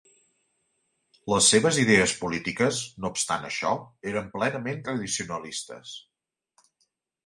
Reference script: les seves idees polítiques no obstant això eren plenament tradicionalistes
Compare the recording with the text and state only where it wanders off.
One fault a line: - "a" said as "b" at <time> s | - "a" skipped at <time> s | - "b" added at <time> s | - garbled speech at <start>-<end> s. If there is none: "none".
none